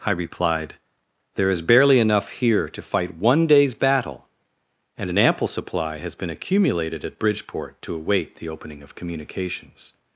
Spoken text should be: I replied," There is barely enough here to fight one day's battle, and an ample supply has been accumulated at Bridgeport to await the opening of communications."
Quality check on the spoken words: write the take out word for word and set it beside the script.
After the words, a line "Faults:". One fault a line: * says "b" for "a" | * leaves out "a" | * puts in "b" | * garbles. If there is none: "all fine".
I replied," There is barely enough here to fight one day's battle, and an ample supply has been accumulated at Bridgeport to await the opening of communications."
Faults:
all fine